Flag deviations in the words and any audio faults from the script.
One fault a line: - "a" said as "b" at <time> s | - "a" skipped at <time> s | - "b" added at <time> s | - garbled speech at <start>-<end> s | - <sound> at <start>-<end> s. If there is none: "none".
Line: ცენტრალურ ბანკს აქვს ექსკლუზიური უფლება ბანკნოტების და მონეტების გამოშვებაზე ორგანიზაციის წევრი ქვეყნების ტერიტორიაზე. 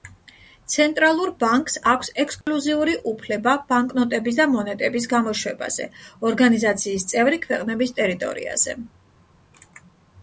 - dropout at 2.4-2.5 s